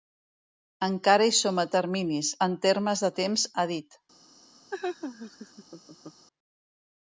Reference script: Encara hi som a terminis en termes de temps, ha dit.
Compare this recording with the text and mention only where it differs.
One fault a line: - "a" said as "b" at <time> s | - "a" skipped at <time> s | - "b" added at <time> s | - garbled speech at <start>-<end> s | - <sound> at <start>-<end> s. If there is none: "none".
- laugh at 4.7-6.3 s